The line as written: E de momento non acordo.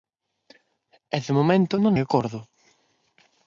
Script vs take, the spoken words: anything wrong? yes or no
no